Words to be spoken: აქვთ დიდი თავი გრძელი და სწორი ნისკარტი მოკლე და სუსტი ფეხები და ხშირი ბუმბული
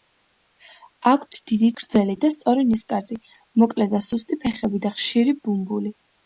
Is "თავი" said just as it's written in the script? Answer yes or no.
no